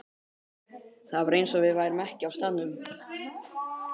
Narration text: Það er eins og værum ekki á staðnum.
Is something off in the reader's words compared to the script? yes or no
yes